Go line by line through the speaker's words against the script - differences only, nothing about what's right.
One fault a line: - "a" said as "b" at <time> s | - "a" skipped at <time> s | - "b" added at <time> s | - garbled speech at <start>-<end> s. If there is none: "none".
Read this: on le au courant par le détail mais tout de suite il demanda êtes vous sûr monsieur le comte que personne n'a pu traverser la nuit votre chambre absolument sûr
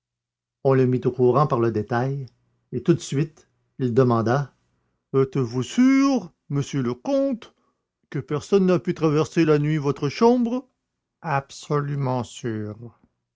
- "mit" added at 0.9 s
- "mais" said as "et" at 2.7 s